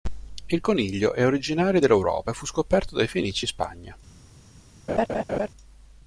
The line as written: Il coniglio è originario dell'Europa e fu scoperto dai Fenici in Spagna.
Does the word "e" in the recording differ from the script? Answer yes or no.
no